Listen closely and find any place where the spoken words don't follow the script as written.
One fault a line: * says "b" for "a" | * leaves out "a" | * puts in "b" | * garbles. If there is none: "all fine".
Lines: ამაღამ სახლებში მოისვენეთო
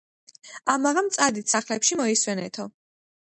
* puts in "წადით"